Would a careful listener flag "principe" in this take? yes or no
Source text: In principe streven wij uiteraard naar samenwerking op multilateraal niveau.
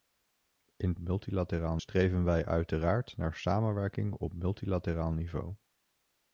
yes